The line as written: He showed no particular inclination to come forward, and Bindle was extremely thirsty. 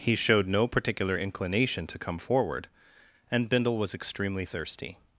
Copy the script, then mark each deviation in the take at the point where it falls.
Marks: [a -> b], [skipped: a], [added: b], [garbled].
He showed no particular inclination to come forward, and Bindle was extremely thirsty.